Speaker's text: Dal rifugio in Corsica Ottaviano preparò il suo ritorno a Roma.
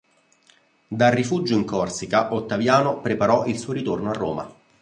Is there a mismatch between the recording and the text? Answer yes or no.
no